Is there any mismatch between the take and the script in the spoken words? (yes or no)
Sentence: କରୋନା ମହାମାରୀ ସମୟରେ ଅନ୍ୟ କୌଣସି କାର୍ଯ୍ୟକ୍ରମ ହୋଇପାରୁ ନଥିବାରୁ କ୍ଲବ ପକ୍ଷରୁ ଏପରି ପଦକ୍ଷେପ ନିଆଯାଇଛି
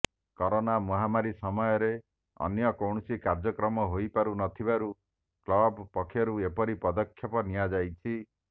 no